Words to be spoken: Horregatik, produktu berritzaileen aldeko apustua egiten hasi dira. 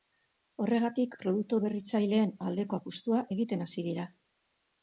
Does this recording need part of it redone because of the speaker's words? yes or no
no